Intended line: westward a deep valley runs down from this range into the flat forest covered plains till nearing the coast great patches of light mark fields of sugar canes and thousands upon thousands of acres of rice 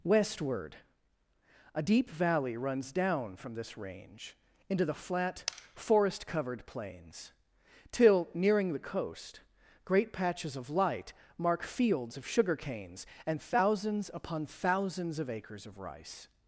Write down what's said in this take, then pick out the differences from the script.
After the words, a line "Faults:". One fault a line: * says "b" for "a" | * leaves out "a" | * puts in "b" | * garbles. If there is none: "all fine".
westward a deep valley runs down from this range into the flat forest covered plains till nearing the coast great patches of light mark fields of sugar canes and thousands upon thousands of acres of rice
Faults:
all fine